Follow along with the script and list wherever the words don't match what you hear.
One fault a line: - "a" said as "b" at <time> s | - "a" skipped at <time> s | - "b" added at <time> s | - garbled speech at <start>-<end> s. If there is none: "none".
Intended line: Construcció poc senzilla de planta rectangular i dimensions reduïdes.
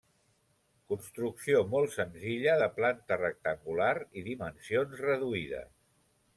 - "poc" said as "molt" at 1.7 s